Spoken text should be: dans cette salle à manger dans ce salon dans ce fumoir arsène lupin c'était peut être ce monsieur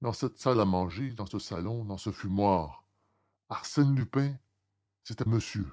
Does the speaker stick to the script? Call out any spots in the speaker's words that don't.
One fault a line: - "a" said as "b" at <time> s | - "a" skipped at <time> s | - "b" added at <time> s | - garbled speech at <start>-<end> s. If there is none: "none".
- "peut être ce" skipped at 5.2 s